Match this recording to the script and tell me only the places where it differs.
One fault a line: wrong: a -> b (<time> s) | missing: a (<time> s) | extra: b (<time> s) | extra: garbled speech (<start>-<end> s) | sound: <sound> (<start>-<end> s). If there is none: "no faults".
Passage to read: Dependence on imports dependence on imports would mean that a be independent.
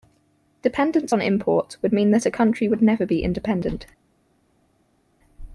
missing: dependence on imports (1.8 s)
extra: country would never (2.3 s)